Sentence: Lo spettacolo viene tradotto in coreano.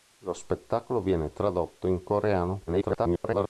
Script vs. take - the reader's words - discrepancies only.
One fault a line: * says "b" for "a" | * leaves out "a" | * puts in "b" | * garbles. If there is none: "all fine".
* garbles